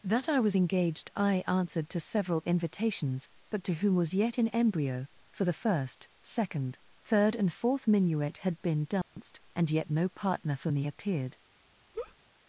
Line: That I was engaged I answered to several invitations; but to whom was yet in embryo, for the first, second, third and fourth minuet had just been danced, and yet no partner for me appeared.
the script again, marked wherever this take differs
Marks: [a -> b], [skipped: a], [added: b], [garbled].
That I was engaged I answered to several invitations; but to whom was yet in embryo, for the first, second, third and fourth minuet had [skipped: just] been danced, and yet no partner for me appeared.